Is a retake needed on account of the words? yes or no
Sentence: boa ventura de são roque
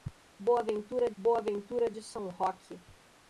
yes